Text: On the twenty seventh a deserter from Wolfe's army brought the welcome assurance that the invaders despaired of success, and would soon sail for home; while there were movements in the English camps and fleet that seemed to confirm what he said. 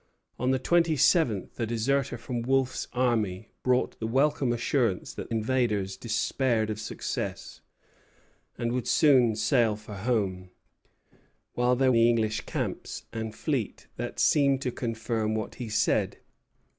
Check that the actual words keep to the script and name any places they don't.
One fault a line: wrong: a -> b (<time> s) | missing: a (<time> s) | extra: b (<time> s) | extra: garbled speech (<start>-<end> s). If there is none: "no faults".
missing: the (5.3 s)
missing: were movements in (11.9 s)